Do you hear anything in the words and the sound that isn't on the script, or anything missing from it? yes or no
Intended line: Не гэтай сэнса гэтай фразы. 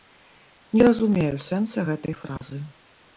yes